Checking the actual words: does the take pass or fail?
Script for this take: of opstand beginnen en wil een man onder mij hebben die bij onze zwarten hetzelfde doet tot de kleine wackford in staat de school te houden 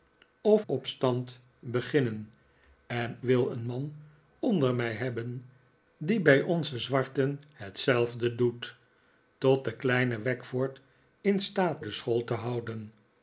pass